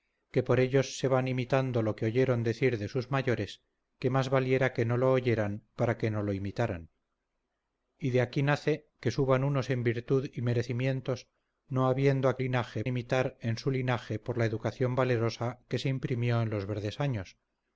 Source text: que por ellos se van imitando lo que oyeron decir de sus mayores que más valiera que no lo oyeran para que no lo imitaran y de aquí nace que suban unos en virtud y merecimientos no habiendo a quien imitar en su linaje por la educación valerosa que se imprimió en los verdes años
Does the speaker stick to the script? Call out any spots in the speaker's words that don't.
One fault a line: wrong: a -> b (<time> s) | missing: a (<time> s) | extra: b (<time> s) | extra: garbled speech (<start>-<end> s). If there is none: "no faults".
wrong: quien -> linaje (12.4 s)